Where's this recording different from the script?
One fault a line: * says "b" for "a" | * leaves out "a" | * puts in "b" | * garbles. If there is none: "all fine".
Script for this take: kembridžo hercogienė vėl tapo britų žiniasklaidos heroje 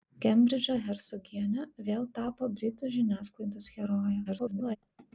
* garbles